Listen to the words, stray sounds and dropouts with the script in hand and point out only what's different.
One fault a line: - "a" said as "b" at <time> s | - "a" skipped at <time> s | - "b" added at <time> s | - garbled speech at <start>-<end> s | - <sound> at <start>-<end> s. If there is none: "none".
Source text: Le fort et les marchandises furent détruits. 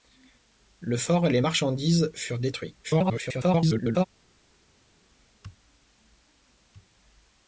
- garbled speech at 2.8-4.1 s